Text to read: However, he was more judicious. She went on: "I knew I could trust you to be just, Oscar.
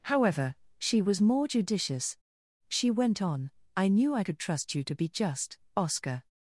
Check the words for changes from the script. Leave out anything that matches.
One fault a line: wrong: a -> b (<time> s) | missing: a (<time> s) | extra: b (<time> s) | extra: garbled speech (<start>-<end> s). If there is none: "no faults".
wrong: he -> she (0.8 s)